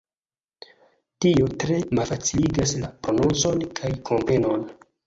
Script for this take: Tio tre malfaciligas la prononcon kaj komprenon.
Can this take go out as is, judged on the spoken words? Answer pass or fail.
pass